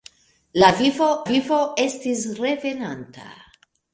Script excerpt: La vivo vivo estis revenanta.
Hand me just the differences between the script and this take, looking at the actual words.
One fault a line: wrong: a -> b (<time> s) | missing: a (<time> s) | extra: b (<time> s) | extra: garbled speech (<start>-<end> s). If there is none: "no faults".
no faults